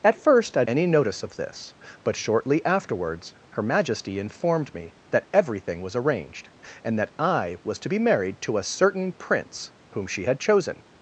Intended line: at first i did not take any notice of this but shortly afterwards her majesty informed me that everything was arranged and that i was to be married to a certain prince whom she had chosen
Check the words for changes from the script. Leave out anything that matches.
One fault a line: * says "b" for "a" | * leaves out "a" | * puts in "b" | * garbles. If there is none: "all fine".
* leaves out "did not take"